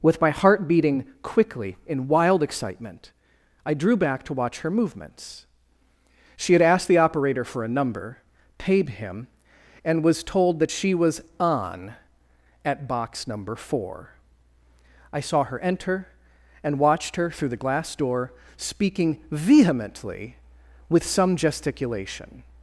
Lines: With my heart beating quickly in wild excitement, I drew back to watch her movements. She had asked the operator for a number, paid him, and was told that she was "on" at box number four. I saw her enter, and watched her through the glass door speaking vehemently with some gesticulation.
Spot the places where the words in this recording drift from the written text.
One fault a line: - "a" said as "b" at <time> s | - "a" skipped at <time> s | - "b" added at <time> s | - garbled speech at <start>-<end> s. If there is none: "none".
none